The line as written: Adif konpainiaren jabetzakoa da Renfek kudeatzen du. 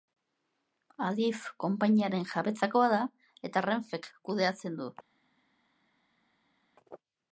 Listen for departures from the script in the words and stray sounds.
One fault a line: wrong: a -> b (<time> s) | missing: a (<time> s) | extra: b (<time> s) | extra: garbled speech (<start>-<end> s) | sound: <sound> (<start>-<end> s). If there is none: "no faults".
extra: eta (3.5 s)